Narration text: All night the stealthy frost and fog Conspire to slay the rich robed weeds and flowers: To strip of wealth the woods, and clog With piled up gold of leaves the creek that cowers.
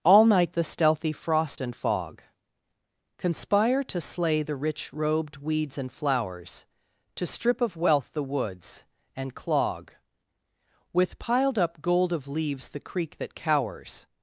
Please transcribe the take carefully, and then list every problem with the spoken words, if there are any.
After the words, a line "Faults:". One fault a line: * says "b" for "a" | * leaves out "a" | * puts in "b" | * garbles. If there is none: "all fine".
All night the stealthy frost and fog Conspire to slay the rich robed weeds and flowers: To strip of wealth the woods, and clog With piled up gold of leaves the creek that cowers.
Faults:
all fine